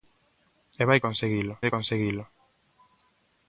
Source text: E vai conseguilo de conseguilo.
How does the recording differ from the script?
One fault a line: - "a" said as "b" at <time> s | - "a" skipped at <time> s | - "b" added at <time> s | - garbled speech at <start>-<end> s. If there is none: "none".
none